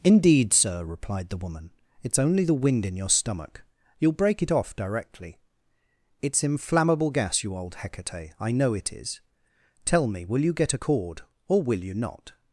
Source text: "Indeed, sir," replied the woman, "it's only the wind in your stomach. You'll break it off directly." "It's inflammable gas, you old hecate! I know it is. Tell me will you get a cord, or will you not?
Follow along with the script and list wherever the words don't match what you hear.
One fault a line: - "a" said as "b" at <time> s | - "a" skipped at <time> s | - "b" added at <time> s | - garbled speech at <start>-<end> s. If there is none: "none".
none